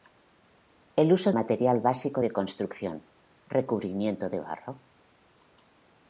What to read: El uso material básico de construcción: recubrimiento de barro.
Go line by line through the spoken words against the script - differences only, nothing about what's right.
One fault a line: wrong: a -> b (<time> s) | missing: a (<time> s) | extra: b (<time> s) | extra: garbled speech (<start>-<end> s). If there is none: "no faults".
no faults